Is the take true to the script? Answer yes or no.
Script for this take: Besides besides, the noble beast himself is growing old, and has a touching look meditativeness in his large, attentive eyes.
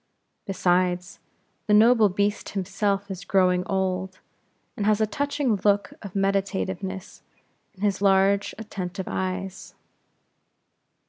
no